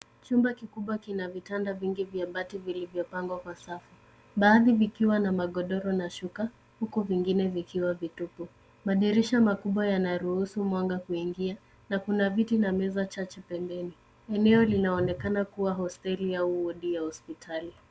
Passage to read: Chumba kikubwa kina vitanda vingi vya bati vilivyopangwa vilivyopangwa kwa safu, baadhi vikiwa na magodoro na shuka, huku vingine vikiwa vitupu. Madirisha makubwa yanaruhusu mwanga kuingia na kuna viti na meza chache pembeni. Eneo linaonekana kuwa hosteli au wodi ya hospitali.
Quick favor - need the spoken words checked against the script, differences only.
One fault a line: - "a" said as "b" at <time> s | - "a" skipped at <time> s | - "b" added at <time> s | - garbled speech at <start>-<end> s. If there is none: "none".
- "vilivyopangwa" skipped at 3.4 s